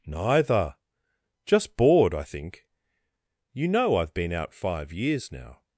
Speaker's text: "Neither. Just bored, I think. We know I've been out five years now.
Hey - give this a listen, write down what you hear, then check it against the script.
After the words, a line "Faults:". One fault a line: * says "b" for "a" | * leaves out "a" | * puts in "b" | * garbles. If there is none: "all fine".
"Neither. Just bored, I think. You know I've been out five years now.
Faults:
* says "You" for "We"